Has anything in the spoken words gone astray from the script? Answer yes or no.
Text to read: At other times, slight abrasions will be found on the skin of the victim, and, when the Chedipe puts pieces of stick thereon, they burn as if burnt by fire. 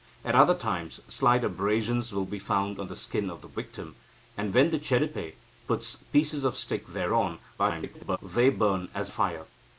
yes